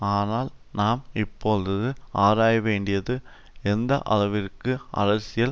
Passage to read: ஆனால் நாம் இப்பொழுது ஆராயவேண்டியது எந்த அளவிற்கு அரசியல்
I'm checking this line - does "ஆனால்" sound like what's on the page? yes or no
yes